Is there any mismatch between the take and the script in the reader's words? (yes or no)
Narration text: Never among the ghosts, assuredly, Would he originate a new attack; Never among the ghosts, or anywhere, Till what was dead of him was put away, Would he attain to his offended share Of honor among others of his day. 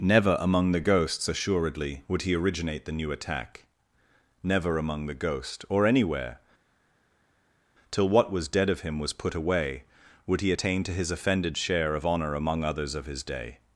yes